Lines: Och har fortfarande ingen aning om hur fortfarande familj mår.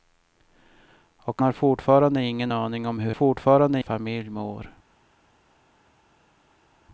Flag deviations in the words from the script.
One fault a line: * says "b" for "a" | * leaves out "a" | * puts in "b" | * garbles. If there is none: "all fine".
all fine